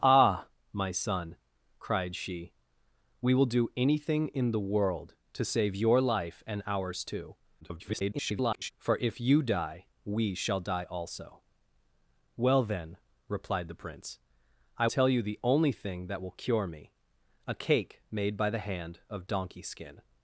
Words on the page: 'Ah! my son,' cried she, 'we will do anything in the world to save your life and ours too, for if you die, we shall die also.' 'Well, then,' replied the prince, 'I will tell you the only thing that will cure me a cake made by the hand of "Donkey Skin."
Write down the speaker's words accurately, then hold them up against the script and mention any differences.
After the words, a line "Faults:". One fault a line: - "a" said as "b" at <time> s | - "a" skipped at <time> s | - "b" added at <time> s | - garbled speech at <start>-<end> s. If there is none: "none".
'Ah! my son,' cried she, 'we will do anything in the world to save your life and ours too, [garbled] for if you die, we shall die also.' 'Well, then,' replied the prince, 'I tell you the only thing that will cure me a cake made by the hand of "Donkey Skin."
Faults:
- garbled speech at 7.6-8.7 s
- "will" skipped at 14.9 s